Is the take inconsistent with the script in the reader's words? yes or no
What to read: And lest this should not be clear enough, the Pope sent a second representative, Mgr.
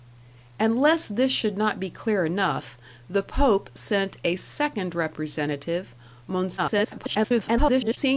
yes